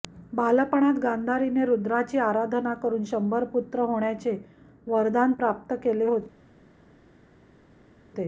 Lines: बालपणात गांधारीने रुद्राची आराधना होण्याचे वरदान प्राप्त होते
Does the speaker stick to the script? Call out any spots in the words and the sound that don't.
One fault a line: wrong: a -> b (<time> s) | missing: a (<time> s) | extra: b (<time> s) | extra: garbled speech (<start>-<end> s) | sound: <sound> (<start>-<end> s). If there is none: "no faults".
extra: करून शंभर पुत्र (2.8 s)
extra: केले (5.8 s)